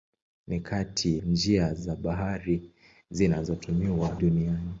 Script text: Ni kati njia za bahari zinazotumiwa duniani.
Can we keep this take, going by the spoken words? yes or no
yes